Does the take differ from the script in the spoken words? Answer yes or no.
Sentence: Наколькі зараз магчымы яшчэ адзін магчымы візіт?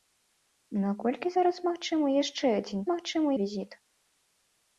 no